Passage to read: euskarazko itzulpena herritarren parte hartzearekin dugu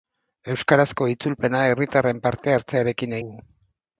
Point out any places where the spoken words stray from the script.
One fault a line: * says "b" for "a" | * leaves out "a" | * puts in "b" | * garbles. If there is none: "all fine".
all fine